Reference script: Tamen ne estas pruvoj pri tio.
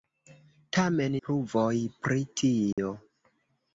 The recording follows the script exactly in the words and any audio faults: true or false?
false